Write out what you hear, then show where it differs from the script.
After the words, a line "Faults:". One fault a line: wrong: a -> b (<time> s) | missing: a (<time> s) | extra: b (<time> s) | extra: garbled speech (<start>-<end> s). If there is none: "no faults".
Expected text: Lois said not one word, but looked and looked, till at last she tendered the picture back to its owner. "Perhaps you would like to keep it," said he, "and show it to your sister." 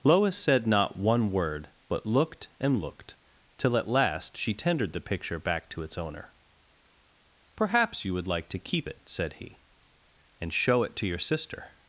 Lois said not one word, but looked and looked, till at last she tendered the picture back to its owner. "Perhaps you would like to keep it," said he, "and show it to your sister."
Faults:
no faults